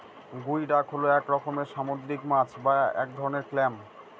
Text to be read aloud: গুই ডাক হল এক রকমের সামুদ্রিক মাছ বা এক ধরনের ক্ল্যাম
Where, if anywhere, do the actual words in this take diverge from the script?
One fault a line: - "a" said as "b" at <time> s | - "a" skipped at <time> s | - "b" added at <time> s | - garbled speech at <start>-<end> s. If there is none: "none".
none